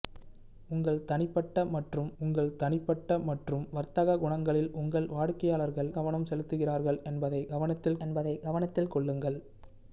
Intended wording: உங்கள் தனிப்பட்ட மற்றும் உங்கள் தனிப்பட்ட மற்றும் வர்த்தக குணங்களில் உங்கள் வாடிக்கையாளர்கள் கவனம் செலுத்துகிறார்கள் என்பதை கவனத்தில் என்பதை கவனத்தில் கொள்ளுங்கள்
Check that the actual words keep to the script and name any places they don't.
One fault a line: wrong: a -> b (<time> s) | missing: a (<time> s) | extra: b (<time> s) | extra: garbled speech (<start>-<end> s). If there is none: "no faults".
no faults